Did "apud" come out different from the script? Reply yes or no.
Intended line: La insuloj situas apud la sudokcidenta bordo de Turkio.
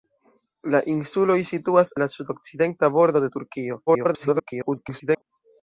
yes